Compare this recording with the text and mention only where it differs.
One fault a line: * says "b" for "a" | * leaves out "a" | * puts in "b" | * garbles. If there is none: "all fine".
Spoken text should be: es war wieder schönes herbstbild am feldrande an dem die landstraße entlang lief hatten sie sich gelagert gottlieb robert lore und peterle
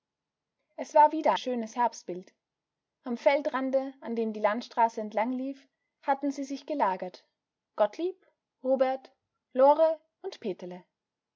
all fine